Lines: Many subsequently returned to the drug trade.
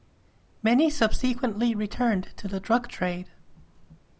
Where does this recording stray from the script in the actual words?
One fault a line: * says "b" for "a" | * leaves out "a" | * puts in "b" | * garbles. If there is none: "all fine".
all fine